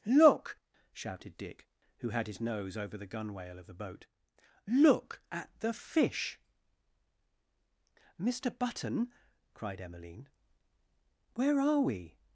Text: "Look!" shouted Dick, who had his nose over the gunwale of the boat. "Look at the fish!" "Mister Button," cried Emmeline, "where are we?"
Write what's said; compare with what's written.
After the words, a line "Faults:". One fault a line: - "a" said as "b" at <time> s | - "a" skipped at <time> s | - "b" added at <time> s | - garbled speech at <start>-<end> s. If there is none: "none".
"Look!" shouted Dick, who had his nose over the gunwale of the boat. "Look at the fish!" "Mister Button," cried Emmeline, "where are we?"
Faults:
none